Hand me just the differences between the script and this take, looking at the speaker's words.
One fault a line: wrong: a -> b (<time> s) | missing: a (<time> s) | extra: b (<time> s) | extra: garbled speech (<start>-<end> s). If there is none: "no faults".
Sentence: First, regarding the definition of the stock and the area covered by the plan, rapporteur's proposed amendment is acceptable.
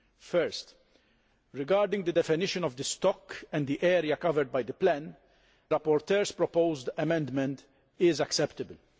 no faults